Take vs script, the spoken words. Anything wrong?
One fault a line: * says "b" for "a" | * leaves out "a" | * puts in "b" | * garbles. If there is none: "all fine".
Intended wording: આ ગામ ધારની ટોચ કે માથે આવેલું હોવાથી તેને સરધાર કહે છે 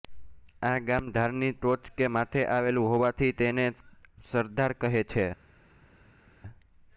all fine